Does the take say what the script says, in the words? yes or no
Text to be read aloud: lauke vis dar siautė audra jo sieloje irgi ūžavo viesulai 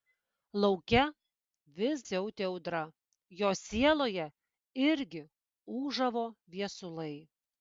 no